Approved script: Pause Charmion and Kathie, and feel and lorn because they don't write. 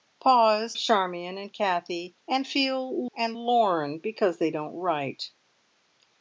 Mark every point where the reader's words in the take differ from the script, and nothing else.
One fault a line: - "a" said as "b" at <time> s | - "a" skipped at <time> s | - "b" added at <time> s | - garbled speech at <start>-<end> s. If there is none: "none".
none